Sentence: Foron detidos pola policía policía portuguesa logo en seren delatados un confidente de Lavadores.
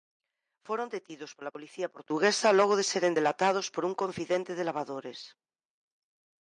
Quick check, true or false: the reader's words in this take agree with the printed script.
false